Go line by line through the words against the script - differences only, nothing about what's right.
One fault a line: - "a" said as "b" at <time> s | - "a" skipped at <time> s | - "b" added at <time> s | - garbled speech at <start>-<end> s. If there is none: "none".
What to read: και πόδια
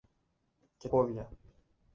none